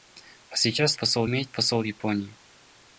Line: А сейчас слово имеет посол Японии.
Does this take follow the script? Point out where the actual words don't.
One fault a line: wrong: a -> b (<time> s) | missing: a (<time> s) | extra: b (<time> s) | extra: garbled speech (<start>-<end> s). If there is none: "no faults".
wrong: слово -> посол (1.0 s)